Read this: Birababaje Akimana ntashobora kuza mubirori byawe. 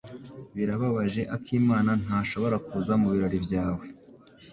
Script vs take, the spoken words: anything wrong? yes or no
no